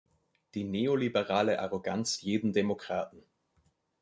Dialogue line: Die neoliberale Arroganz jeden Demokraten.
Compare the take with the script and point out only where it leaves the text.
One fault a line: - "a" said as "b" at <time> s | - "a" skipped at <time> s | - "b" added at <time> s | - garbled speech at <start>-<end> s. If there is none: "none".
none